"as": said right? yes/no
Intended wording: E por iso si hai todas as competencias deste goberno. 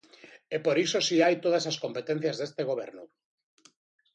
yes